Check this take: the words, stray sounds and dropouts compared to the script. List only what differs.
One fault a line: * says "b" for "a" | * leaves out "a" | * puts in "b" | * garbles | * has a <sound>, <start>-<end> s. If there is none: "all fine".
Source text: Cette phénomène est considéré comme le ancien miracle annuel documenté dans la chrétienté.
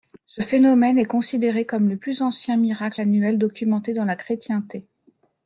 * says "Ce" for "Cette"
* puts in "plus"